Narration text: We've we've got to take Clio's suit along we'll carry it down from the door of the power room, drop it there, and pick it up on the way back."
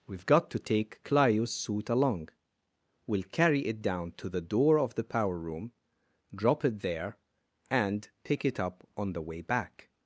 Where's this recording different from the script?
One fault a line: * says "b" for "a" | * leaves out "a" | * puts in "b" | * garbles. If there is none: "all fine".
* leaves out "we've"
* says "to" for "from"